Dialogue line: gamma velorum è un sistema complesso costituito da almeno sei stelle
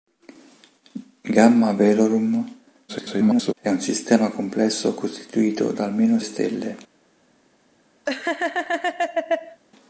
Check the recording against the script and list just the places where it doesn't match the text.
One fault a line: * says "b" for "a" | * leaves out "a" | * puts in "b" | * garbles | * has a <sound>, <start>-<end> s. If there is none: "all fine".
* garbles
* leaves out "sei"
* has a laugh, 8.1-9.6 s